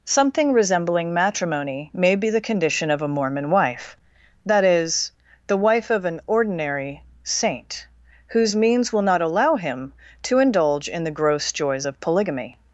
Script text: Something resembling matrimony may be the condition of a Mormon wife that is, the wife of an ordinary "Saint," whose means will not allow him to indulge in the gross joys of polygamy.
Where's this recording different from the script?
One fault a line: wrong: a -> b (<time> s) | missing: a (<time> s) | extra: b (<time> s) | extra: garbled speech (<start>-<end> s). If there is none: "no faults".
no faults